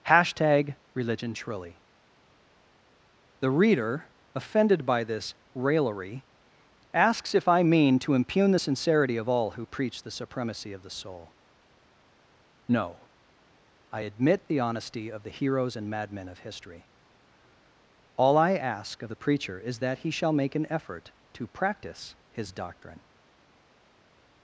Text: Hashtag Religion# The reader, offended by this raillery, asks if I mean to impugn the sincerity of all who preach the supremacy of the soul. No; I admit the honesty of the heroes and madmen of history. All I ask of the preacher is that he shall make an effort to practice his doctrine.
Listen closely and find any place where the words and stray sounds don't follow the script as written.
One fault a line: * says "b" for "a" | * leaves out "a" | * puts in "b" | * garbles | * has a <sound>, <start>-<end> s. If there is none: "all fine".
* puts in "truly"